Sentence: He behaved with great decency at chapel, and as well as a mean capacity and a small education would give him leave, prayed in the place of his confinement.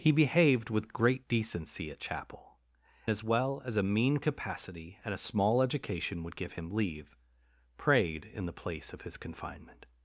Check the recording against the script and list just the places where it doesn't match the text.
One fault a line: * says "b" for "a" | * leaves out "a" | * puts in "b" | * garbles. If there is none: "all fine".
* leaves out "and"